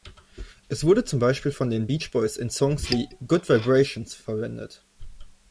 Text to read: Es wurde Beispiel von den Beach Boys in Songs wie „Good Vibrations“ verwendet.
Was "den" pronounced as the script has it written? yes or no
yes